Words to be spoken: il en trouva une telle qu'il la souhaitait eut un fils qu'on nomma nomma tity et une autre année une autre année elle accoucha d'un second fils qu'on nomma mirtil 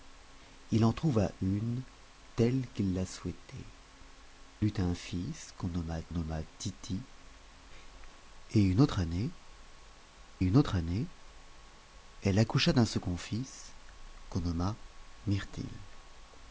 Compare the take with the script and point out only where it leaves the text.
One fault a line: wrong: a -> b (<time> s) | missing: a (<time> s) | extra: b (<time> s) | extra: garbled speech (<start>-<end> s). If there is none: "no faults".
no faults